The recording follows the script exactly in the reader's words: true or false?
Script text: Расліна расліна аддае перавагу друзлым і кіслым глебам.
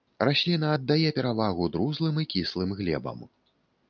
false